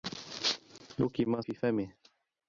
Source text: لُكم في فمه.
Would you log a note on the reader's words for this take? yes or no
no